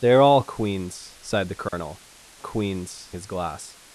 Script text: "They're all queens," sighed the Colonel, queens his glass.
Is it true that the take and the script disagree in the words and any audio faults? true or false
true